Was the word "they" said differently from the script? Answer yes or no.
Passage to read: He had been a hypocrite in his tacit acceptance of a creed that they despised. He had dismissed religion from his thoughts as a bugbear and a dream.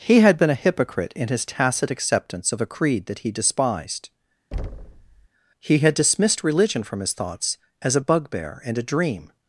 yes